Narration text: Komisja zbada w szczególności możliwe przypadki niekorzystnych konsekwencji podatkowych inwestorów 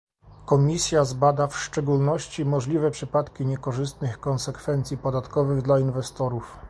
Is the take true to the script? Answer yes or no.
no